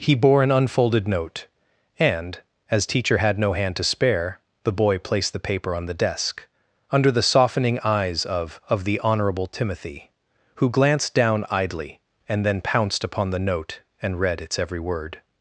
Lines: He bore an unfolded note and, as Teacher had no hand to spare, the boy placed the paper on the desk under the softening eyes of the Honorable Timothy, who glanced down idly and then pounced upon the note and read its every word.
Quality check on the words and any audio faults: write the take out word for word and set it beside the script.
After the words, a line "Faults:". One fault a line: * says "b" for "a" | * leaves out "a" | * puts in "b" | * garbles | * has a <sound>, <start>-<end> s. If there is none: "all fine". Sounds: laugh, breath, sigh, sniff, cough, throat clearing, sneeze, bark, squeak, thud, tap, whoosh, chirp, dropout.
He bore an unfolded note and, as Teacher had no hand to spare, the boy placed the paper on the desk under the softening eyes of of the Honorable Timothy, who glanced down idly and then pounced upon the note and read its every word.
Faults:
* puts in "of"